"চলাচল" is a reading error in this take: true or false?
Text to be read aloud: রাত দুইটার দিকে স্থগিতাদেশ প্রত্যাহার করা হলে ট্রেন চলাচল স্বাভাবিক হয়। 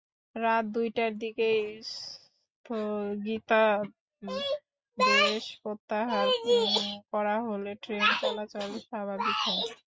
false